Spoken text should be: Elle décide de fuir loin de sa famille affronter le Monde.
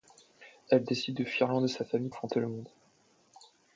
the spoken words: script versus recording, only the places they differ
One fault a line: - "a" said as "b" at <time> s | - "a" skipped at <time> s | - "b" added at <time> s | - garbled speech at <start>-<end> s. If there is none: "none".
none